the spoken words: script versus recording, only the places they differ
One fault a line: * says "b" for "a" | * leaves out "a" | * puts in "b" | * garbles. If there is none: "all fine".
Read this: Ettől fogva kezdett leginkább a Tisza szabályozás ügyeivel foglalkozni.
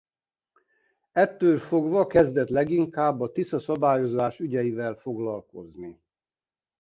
all fine